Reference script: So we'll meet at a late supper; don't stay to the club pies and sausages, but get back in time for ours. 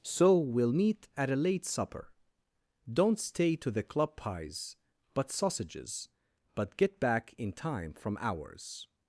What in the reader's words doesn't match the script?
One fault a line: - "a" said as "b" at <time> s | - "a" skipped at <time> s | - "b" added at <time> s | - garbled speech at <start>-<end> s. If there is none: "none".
- "and" said as "but" at 5.1 s
- "for" said as "from" at 7.9 s